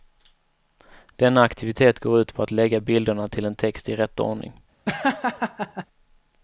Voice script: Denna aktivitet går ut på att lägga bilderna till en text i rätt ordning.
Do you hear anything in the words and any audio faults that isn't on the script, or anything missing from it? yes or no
yes